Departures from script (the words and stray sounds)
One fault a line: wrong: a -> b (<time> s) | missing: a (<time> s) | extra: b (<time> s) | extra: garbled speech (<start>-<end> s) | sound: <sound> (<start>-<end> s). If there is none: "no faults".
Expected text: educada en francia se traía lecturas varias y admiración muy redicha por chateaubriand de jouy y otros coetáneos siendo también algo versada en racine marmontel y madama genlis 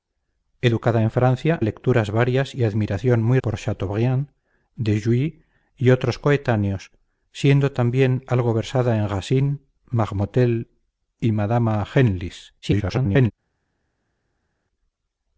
missing: se traía (1.6 s)
missing: redicha (3.4 s)
extra: garbled speech (12.6-13.3 s)